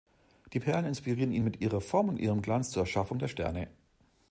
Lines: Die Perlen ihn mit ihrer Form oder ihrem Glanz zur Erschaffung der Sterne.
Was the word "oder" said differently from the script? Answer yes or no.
yes